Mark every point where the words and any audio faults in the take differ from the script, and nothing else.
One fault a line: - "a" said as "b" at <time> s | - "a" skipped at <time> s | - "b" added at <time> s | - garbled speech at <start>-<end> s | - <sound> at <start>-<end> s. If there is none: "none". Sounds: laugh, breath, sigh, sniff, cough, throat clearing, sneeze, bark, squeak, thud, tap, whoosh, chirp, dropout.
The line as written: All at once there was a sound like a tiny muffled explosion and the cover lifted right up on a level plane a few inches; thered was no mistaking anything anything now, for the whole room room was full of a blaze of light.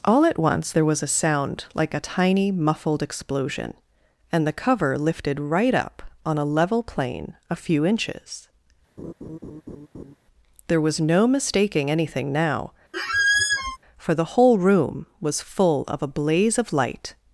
- laugh at 9.0-10.2 s
- "thered" said as "there" at 10.7 s
- "anything" skipped at 12.3 s
- squeak at 12.9-13.8 s
- "room" skipped at 15.1 s